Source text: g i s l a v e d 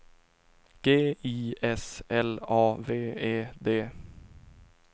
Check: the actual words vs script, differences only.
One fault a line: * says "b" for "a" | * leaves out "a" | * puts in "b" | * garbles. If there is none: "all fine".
all fine